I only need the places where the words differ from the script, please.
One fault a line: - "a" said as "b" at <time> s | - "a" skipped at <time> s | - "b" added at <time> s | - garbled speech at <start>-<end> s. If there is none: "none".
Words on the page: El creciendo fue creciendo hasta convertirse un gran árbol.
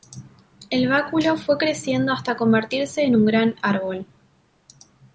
- "creciendo" said as "báculo" at 0.9 s
- "en" added at 3.0 s